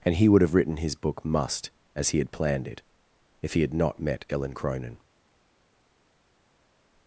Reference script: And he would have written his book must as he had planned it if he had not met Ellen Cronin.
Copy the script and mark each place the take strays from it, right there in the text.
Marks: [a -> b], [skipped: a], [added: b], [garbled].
And he would have written his book must as he had planned it if he had not met Ellen Cronin.